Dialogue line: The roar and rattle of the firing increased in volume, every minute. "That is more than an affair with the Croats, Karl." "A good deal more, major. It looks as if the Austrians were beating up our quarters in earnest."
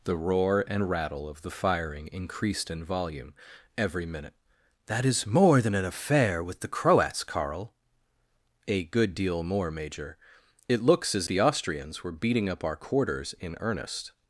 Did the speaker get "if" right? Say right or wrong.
wrong